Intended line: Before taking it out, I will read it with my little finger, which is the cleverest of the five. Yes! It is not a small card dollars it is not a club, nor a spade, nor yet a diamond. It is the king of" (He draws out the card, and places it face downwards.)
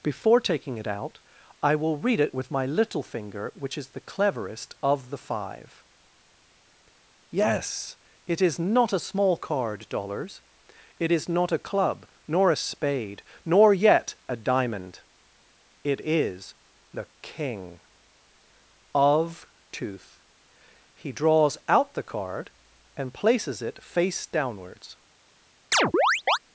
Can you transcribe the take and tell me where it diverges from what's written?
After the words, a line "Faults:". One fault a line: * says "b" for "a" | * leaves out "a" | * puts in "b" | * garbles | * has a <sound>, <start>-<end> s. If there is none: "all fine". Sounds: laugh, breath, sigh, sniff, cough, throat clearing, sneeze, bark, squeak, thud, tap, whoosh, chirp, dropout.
Before taking it out, I will read it with my little finger, which is the cleverest of the five. Yes! It is not a small card dollars it is not a club, nor a spade, nor yet a diamond. It is the king of" tooth (He draws out the card, and places it face downwards.)
Faults:
* puts in "tooth"
* has a chirp, 25.7-26.4 s